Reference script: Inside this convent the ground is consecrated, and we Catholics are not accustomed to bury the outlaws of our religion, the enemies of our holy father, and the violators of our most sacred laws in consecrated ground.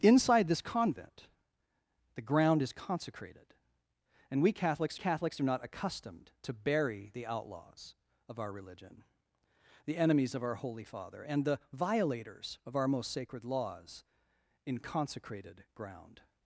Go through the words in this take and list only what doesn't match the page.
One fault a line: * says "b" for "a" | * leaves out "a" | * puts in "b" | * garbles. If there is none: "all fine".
* puts in "Catholics"